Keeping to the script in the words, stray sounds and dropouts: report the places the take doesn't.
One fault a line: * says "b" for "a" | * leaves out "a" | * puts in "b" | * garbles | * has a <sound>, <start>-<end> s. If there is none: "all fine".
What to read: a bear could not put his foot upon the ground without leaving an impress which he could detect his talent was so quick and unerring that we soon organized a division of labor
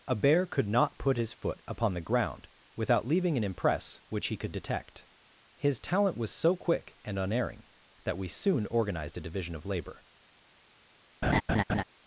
* has a laugh, 11.2-11.8 s